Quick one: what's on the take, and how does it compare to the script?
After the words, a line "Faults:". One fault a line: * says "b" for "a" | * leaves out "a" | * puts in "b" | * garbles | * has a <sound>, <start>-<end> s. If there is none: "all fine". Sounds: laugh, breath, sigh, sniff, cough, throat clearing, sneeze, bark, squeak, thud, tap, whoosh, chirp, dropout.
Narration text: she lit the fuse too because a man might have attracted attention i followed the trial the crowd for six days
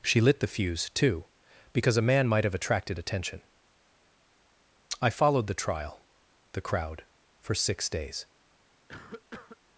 she lit the fuse too because a man might have attracted attention i followed the trial the crowd for six days
Faults:
* has a cough, 8.9-9.6 s